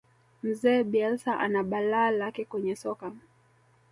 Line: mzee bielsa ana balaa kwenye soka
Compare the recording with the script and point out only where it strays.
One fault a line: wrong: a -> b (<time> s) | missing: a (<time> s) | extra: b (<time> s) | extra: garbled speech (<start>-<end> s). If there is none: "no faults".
extra: lake (2.1 s)